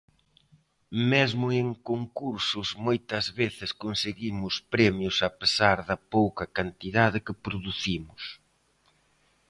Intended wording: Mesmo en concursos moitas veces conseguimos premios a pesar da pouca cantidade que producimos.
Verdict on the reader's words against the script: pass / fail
pass